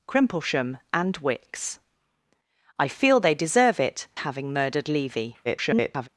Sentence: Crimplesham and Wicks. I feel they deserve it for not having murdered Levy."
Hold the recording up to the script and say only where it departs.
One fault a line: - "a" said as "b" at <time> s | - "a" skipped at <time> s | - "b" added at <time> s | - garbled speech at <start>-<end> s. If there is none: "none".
- "for not" skipped at 4.1 s
- garbled speech at 5.4-6.1 s